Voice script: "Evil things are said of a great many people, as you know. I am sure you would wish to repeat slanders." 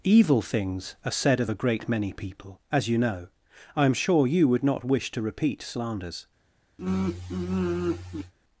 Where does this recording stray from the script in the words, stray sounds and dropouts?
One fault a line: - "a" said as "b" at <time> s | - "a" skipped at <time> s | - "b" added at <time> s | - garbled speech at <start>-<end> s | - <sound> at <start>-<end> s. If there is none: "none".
- "not" added at 4.6 s
- sigh at 6.8-8.3 s